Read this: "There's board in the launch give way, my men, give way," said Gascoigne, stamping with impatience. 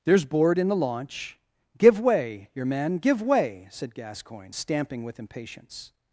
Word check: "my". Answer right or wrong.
wrong